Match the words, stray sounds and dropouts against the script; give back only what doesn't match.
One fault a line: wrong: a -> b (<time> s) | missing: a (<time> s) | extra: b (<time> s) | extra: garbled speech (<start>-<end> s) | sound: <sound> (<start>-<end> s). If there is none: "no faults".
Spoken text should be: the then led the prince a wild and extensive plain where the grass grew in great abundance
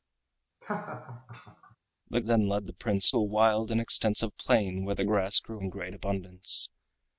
sound: laugh (0.6-1.8 s)